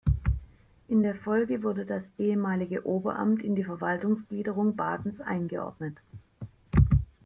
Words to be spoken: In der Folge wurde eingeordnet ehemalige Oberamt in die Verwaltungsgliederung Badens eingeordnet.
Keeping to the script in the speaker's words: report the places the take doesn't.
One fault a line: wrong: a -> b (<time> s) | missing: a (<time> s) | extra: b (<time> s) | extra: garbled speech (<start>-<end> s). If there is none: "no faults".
wrong: eingeordnet -> das (1.8 s)